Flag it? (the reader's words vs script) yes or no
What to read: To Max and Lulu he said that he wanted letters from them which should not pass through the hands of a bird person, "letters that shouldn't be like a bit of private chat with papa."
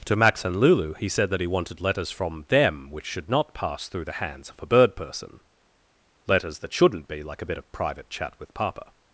no